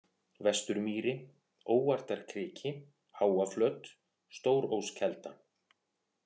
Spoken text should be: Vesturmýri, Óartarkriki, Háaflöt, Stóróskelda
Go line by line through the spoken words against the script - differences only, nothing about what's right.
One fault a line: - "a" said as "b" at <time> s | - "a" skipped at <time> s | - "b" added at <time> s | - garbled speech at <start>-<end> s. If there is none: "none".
none